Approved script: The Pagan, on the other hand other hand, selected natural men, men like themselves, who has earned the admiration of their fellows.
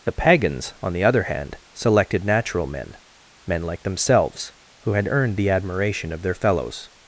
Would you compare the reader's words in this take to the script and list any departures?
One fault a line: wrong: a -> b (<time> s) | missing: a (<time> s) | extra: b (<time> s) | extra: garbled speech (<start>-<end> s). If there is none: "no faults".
wrong: Pagan -> Pagans (0.1 s)
missing: other hand (1.6 s)
wrong: has -> had (4.9 s)